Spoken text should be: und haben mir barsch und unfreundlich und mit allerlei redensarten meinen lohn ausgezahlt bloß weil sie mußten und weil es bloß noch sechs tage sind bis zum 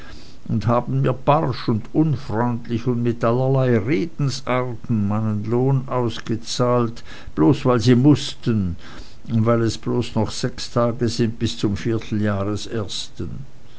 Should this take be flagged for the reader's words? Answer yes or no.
no